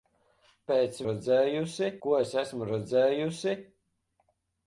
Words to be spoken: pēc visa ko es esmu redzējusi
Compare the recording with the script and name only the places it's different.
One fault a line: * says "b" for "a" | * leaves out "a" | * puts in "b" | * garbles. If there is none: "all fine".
* says "redzējusi" for "visa"